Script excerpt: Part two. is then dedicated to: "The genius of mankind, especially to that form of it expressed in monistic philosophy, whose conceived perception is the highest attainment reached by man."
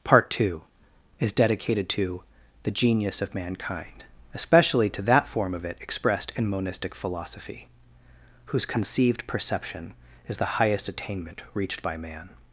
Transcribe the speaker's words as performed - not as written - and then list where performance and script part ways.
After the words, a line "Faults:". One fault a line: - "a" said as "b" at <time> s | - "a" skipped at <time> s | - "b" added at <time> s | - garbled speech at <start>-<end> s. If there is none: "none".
Part two. is dedicated to: "The genius of mankind, especially to that form of it expressed in monistic philosophy, whose conceived perception is the highest attainment reached by man."
Faults:
- "then" skipped at 1.3 s